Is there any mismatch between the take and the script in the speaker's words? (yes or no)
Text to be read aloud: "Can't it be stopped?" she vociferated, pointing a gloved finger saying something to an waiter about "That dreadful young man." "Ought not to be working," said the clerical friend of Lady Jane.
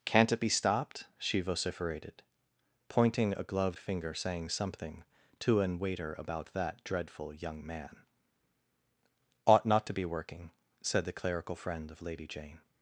no